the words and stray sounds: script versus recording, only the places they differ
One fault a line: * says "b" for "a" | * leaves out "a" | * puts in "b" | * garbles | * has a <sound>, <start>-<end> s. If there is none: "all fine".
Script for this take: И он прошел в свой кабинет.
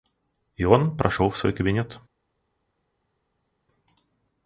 all fine